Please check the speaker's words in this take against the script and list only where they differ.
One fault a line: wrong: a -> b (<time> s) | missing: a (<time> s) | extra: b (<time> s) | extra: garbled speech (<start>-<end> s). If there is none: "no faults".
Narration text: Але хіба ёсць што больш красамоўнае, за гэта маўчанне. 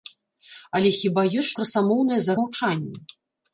missing: што больш (1.5 s)
missing: гэта (2.4 s)